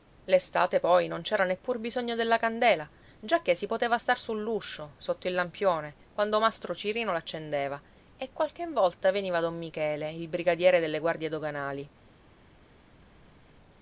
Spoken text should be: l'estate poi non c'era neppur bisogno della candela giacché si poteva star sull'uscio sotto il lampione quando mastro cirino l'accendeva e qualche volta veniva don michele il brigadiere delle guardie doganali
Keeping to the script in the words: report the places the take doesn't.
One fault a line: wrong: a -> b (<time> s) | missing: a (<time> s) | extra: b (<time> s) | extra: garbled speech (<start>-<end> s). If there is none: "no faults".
no faults